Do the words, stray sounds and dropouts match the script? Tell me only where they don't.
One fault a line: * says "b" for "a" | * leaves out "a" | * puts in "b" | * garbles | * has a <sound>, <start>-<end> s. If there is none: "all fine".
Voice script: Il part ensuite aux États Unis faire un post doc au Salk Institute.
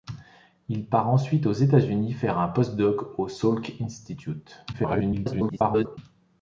* garbles